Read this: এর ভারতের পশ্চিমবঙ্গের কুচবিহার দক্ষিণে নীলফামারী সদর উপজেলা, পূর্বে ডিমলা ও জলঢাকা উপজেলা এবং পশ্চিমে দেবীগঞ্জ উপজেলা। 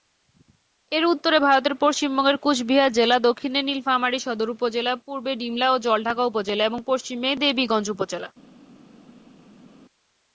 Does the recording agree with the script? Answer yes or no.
no